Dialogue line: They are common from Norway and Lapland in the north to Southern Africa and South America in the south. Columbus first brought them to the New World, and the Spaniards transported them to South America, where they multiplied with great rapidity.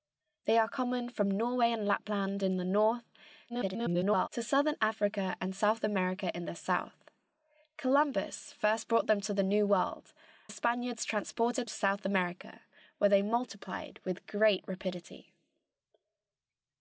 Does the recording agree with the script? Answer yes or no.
no